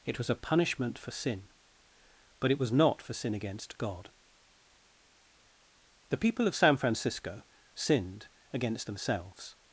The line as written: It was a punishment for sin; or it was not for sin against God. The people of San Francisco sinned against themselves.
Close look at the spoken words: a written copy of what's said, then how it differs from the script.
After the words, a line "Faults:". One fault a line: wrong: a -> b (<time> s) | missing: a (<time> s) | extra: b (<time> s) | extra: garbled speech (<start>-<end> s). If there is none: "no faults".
It was a punishment for sin; but it was not for sin against God. The people of San Francisco sinned against themselves.
Faults:
wrong: or -> but (2.4 s)